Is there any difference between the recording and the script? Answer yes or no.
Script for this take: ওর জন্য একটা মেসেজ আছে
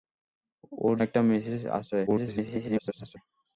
yes